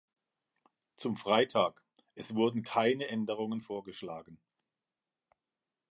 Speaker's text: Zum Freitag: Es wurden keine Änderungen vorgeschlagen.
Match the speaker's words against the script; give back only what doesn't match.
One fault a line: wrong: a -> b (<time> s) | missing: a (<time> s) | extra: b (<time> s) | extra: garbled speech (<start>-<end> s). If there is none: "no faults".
no faults